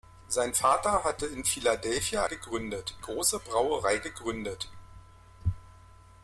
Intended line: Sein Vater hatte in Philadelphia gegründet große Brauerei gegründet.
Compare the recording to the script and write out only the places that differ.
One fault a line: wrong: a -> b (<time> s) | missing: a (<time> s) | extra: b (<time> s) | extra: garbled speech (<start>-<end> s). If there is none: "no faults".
no faults